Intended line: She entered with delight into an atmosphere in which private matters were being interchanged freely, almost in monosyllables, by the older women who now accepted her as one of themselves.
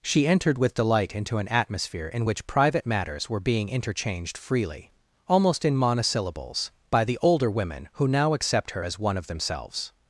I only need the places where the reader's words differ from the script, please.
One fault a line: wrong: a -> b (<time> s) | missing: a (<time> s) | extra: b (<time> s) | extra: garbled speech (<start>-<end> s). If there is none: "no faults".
wrong: accepted -> accept (8.3 s)